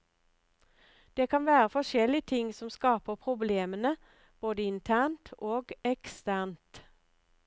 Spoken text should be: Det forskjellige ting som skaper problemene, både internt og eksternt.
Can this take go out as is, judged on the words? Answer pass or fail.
fail